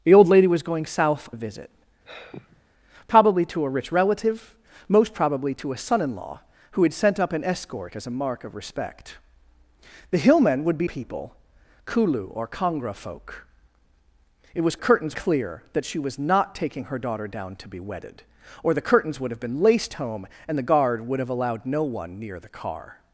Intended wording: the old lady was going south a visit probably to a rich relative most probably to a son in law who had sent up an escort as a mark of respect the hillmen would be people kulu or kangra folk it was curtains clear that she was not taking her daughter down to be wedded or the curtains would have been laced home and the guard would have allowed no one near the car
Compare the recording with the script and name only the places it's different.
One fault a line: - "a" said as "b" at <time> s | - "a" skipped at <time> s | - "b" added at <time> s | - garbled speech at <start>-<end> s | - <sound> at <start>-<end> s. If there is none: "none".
- sigh at 2.0-2.6 s